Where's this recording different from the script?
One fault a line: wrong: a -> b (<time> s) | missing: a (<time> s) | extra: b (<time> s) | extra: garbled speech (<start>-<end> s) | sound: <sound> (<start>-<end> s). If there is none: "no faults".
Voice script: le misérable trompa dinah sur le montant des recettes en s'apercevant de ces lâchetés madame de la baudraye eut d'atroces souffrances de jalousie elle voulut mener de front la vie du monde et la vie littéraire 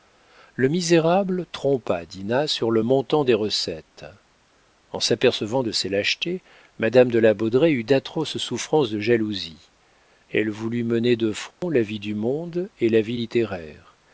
sound: dropout (11.5-11.6 s)